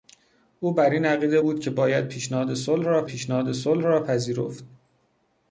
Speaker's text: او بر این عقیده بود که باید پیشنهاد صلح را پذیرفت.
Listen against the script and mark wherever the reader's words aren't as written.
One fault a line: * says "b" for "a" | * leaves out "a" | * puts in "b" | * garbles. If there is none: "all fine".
* puts in "پیشنهاد صلح را"